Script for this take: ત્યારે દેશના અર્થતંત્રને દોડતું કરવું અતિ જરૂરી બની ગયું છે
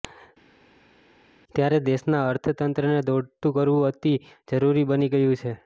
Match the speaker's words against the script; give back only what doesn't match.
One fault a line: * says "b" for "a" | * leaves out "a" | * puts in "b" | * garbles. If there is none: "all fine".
all fine